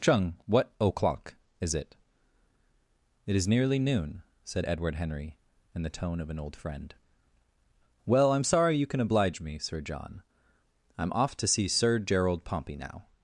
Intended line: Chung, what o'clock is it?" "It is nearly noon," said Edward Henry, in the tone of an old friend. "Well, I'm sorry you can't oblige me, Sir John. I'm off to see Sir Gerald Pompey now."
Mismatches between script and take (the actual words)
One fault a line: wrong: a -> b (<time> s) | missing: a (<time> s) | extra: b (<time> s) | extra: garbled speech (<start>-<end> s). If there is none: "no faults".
wrong: can't -> can (8.9 s)